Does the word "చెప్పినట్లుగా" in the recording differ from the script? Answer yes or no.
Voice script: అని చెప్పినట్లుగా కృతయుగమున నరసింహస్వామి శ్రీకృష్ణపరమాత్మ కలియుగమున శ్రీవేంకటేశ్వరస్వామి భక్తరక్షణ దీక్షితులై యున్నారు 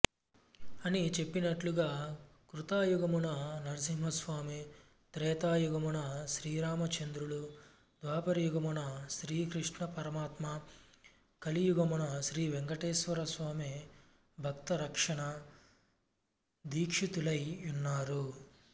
no